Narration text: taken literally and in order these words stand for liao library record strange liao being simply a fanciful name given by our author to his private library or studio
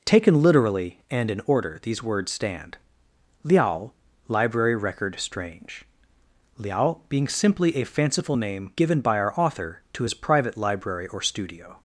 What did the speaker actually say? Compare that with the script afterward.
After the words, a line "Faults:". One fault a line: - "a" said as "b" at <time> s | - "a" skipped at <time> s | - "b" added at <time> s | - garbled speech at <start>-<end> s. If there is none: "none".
taken literally and in order these words stand liao library record strange liao being simply a fanciful name given by our author to his private library or studio
Faults:
- "for" skipped at 2.8 s